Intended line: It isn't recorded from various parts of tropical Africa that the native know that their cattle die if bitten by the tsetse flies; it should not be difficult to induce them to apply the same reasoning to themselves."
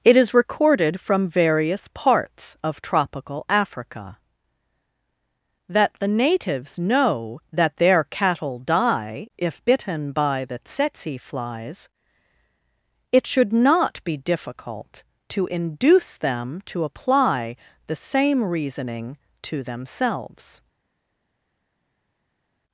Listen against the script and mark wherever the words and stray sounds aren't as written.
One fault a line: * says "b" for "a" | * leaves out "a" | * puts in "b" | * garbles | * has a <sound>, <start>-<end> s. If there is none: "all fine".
* says "is" for "isn't"
* says "natives" for "native"